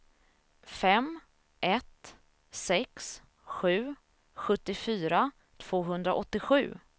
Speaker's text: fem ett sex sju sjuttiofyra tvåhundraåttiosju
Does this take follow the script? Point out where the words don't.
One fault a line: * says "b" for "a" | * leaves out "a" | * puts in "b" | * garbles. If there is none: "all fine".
all fine